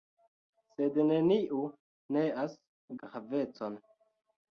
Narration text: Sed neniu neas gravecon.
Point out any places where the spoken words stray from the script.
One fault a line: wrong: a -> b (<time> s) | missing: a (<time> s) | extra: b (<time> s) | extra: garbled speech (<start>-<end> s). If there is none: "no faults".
no faults